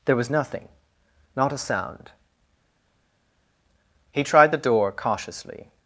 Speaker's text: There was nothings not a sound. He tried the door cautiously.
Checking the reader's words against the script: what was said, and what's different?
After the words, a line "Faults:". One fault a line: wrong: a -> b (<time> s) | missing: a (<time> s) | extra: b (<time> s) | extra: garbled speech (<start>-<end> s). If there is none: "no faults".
There was nothing not a sound. He tried the door cautiously.
Faults:
wrong: nothings -> nothing (0.3 s)